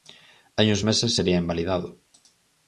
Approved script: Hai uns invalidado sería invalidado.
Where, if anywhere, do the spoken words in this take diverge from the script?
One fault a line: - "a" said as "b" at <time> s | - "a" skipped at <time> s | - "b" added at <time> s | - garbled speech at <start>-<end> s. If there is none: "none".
- "invalidado" said as "meses" at 0.9 s